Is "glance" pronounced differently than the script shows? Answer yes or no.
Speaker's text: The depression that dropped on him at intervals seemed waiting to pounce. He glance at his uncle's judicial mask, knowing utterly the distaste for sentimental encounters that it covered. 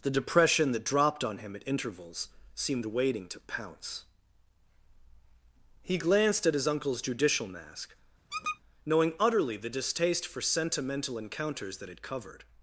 yes